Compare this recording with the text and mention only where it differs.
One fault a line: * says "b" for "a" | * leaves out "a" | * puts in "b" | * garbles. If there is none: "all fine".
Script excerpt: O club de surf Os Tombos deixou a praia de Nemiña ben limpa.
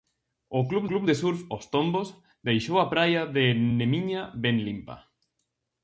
* puts in "club"